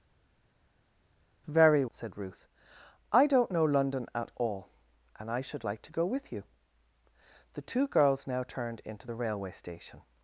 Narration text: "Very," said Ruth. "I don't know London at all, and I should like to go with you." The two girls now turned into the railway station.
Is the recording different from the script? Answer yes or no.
no